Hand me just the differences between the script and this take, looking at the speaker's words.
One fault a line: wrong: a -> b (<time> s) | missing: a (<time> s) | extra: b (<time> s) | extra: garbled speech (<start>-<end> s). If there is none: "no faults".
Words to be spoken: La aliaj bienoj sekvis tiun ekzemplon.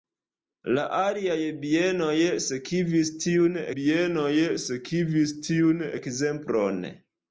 extra: bienoj sekvis tiun (3.8 s)